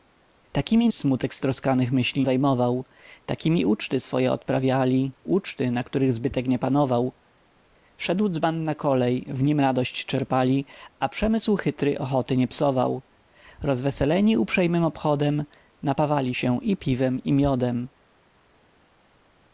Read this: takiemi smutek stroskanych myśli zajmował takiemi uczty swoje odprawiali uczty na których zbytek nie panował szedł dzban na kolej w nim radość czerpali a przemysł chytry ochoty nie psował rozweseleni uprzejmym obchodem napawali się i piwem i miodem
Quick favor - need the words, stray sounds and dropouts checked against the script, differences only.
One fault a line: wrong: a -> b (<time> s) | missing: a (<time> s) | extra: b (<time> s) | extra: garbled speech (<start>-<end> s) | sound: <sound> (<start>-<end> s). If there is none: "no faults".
no faults